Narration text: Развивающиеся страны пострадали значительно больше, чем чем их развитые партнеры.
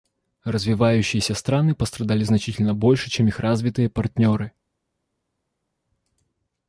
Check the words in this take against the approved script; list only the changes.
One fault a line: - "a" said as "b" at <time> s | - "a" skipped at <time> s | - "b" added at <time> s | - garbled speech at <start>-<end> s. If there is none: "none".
- "чем" skipped at 3.3 s